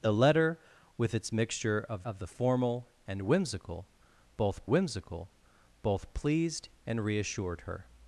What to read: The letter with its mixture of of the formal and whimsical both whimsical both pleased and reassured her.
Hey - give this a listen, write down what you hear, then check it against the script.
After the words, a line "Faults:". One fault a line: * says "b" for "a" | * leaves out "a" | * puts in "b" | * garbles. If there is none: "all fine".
The letter with its mixture of of the formal and whimsical both whimsical both pleased and reassured her.
Faults:
all fine